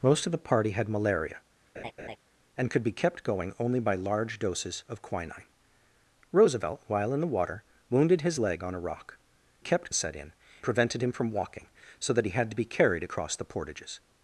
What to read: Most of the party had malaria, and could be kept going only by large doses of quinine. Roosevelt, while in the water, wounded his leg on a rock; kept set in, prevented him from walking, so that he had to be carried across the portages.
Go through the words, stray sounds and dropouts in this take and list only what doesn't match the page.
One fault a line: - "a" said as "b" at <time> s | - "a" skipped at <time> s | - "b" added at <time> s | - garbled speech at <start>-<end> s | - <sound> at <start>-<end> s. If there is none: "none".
- laugh at 1.8-2.2 s